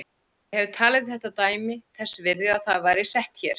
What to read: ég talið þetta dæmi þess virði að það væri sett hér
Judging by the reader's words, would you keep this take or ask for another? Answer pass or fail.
fail